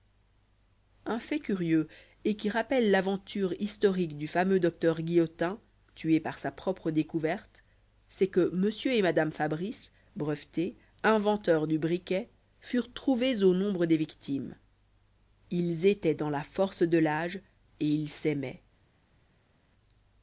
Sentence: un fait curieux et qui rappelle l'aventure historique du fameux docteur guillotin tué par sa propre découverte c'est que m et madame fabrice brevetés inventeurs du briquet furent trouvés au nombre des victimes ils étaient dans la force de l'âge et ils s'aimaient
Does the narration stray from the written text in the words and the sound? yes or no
no